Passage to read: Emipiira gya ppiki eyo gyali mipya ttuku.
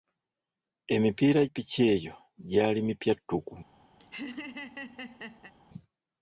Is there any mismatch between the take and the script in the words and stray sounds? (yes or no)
yes